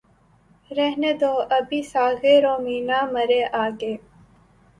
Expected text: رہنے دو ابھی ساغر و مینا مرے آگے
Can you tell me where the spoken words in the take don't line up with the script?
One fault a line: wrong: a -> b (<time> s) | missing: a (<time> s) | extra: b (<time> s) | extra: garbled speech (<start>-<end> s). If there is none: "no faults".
no faults